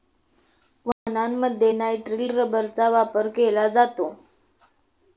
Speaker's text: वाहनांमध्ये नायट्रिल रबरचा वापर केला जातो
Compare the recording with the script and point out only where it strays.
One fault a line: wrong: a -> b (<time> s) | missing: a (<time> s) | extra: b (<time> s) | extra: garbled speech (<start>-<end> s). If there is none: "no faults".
no faults